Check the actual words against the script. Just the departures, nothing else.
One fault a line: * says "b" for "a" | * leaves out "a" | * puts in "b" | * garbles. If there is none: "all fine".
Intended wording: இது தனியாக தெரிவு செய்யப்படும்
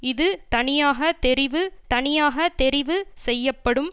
* puts in "தனியாக தெரிவு"